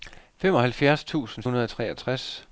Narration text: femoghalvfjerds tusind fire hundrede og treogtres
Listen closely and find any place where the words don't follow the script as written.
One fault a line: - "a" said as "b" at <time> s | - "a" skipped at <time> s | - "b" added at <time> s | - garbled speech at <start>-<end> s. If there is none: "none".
- "fire" skipped at 1.4 s